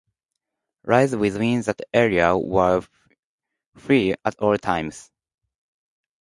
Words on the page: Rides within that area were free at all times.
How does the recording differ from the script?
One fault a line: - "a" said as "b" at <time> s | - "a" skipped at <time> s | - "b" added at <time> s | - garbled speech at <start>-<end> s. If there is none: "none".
none